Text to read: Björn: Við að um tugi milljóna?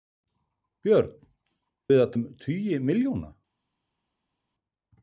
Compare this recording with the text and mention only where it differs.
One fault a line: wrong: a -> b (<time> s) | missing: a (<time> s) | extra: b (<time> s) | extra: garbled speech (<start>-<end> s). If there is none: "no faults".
no faults